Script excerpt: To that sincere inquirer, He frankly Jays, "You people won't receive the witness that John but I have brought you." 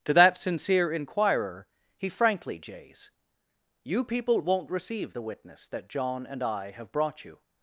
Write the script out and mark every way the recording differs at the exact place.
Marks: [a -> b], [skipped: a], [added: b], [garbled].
To that sincere inquirer, He frankly Jays, "You people won't receive the witness that John [but -> and] I have brought you."